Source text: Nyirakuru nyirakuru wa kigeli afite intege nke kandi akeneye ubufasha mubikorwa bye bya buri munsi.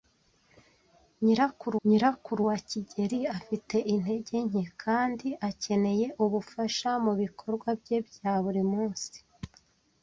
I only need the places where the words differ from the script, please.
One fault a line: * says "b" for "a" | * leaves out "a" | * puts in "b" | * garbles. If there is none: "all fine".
all fine